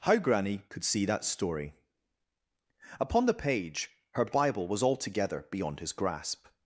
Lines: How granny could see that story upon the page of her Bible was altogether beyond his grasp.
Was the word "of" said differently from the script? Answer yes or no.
yes